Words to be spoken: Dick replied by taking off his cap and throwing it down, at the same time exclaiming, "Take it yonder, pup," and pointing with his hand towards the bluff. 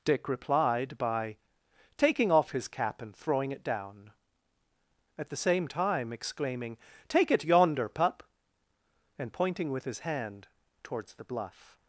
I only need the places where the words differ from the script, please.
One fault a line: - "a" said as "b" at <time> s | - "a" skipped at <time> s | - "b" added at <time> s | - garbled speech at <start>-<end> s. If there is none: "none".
none